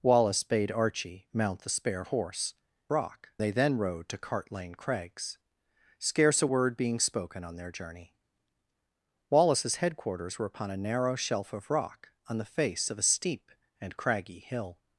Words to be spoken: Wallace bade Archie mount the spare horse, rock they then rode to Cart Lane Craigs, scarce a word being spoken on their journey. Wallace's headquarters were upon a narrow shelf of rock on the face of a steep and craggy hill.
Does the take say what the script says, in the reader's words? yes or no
yes